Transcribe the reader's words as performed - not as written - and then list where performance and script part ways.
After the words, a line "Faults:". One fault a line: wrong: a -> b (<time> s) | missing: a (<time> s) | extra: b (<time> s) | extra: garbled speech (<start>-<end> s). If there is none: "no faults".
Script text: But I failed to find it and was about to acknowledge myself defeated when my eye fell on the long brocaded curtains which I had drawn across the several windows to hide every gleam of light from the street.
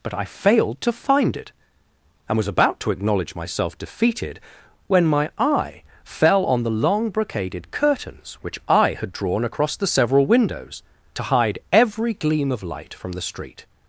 But I failed to find it and was about to acknowledge myself defeated when my eye fell on the long brocaded curtains which I had drawn across the several windows to hide every gleam of light from the street.
Faults:
no faults